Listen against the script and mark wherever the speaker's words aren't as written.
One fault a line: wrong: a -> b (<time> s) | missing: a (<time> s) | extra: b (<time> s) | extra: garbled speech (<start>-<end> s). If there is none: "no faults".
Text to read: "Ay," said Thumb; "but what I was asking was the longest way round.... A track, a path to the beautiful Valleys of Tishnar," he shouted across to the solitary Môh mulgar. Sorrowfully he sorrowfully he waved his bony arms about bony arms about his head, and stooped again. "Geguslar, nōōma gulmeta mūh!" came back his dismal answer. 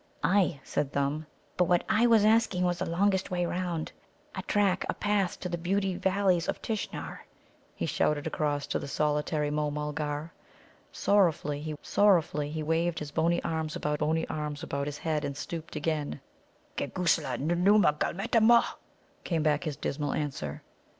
no faults